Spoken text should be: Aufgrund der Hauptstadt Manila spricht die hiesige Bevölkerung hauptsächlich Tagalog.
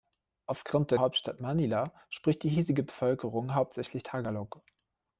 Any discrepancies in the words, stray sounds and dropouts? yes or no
no